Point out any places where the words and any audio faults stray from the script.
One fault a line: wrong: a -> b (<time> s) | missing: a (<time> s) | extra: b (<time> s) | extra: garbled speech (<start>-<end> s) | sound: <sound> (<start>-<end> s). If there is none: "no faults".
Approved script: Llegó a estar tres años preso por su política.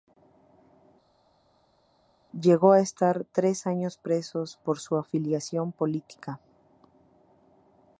extra: afiliación (5.0 s)